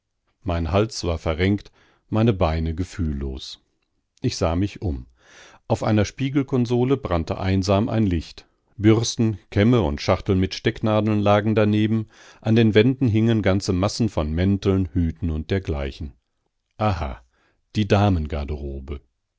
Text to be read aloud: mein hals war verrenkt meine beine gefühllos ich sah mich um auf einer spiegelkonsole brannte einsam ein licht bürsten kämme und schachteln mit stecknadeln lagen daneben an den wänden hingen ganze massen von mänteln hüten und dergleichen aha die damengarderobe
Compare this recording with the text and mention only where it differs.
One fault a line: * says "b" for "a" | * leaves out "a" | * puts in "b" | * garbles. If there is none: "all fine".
all fine